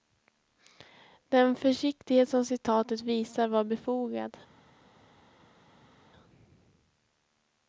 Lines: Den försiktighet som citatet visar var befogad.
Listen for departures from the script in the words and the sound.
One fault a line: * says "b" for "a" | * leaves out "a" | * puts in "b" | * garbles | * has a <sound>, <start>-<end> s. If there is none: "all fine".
all fine